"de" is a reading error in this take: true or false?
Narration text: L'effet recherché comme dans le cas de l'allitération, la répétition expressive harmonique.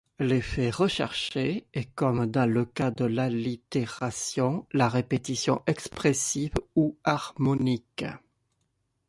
false